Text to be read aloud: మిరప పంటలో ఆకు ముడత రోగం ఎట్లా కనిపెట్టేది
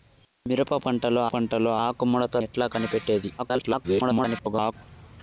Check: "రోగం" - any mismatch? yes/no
yes